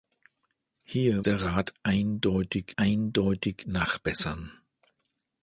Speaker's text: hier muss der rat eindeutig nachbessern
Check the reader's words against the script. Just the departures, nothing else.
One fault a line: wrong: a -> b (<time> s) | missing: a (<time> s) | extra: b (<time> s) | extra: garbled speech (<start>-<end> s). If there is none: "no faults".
missing: muss (1.2 s)
extra: eindeutig (2.8 s)